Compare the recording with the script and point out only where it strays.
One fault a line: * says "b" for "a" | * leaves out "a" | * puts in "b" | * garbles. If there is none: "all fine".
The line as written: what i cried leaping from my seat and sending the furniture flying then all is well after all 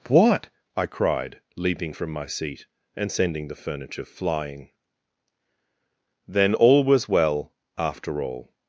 * says "was" for "is"